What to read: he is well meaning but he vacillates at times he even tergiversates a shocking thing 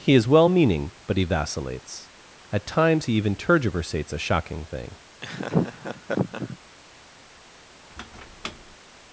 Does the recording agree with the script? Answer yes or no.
yes